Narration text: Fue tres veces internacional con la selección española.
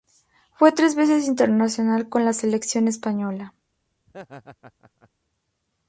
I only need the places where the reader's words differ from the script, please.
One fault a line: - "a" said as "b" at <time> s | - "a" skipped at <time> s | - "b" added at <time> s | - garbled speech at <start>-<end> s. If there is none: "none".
none